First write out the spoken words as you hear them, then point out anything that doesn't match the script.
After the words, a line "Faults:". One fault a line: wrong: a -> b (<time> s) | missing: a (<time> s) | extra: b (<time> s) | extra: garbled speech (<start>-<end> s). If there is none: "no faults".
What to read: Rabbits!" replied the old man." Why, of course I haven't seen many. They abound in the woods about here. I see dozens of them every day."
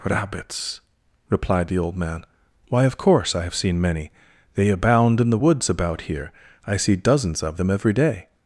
Rabbits!" replied the old man." Why, of course I have seen many. They abound in the woods about here. I see dozens of them every day."
Faults:
wrong: haven't -> have (3.4 s)